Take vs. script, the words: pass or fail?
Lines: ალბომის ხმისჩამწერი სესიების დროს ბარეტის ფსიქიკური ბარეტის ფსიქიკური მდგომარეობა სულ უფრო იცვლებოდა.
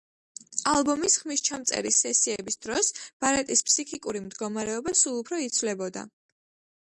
fail